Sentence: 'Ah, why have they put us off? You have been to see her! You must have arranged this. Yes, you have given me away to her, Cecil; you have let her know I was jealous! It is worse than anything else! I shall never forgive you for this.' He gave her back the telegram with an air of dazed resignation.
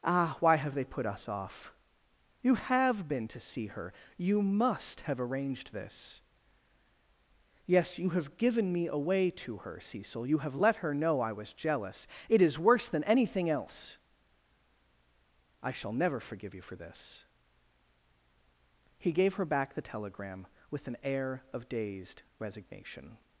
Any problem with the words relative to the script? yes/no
no